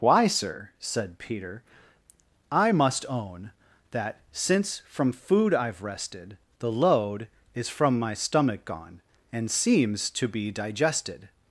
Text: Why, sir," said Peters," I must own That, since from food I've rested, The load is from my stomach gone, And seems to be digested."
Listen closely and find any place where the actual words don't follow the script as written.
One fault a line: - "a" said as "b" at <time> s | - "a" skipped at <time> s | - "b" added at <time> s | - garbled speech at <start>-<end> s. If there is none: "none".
- "Peters" said as "Peter" at 1.2 s